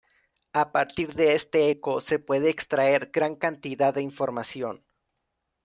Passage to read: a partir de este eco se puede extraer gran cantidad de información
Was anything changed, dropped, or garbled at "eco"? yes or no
no